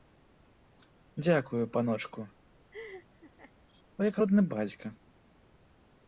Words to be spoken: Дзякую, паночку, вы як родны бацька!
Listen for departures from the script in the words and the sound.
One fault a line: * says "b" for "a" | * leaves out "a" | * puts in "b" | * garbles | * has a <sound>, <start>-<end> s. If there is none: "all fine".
* has a laugh, 2.7-3.5 s